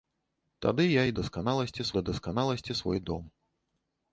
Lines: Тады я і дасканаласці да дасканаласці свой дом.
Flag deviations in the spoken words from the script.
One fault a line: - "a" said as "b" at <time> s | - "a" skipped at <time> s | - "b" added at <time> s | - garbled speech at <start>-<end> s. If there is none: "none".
none